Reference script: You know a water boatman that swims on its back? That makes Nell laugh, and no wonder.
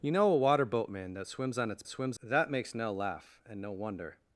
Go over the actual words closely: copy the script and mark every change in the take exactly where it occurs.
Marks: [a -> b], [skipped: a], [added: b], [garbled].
You know a water boatman that swims on its [back? -> swims] That makes Nell laugh, and no wonder.